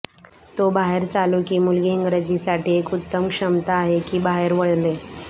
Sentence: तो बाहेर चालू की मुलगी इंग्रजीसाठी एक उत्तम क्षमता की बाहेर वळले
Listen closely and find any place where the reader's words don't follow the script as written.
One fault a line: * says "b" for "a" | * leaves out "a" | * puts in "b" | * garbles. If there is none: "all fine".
* puts in "आहे"